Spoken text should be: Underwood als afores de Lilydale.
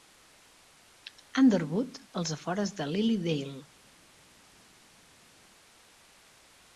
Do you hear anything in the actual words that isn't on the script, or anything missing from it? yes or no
no